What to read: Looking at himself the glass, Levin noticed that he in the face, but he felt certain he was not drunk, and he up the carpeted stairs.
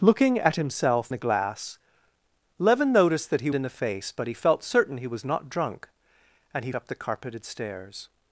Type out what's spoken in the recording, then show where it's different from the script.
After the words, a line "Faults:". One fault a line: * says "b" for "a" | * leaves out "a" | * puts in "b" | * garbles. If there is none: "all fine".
Looking at himself the glass, Levin noticed that he in the face, but he felt certain he was not drunk, and he up the carpeted stairs.
Faults:
all fine